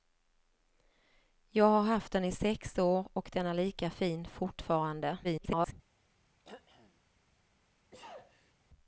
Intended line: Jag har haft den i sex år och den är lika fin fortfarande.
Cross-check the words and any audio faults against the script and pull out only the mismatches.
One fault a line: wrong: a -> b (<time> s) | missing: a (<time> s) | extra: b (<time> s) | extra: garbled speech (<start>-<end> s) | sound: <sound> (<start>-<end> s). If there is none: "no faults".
extra: garbled speech (5.2-5.7 s)
sound: throat clearing (6.4-7.0 s)
sound: sneeze (7.9-8.5 s)